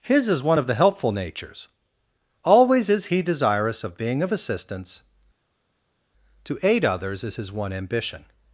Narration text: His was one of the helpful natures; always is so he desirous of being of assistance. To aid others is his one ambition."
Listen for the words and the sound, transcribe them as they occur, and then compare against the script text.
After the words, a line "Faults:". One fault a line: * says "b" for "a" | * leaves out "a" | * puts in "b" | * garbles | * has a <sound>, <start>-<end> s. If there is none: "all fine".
His is one of the helpful natures; always is he desirous of being of assistance. To aid others is his one ambition."
Faults:
* says "is" for "was"
* leaves out "so"